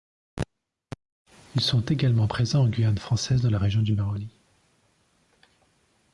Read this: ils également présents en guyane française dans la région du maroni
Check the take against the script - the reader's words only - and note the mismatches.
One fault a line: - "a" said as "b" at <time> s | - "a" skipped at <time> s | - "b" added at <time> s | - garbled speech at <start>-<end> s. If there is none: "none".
- "sont" added at 1.6 s